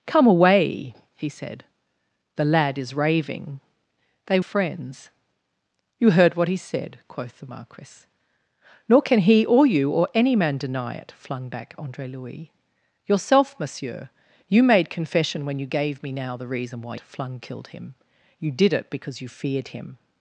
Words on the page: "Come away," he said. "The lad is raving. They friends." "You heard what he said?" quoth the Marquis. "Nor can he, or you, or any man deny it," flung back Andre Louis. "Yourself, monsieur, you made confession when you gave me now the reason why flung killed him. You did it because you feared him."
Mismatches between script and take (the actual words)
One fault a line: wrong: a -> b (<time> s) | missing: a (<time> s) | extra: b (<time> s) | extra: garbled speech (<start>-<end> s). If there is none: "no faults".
no faults